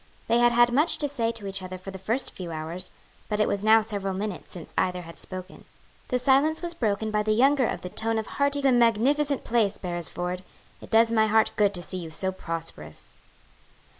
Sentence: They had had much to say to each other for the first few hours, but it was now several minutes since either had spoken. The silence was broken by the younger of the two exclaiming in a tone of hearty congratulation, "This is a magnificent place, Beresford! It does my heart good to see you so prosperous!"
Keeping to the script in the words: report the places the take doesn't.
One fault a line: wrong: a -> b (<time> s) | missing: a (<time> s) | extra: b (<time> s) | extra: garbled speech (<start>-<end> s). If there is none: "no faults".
missing: two exclaiming in (7.9 s)
missing: congratulation This is (8.6 s)